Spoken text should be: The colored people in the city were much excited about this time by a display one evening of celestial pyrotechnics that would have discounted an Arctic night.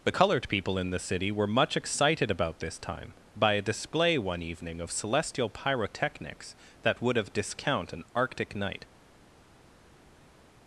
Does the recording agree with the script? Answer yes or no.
no